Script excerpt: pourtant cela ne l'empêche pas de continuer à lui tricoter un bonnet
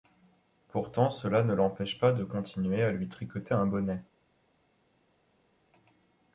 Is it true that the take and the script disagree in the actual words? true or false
false